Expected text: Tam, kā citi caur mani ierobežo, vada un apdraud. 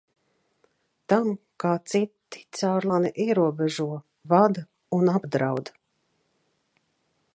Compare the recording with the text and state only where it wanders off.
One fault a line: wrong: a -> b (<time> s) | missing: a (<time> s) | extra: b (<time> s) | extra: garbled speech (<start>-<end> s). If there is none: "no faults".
no faults